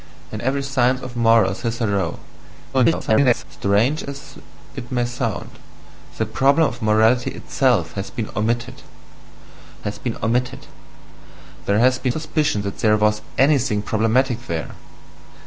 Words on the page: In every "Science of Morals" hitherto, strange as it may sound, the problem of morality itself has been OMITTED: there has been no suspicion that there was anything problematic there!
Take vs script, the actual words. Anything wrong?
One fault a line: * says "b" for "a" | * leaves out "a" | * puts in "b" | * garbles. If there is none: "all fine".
* garbles
* puts in "has been OMITTED"
* leaves out "no"